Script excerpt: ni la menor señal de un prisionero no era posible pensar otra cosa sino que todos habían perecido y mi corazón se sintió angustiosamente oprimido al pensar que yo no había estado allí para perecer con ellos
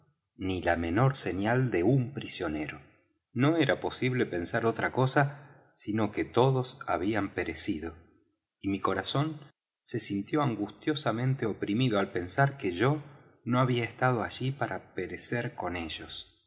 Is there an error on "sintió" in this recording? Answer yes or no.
no